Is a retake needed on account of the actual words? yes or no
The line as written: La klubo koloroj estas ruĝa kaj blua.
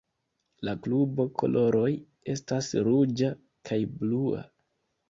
no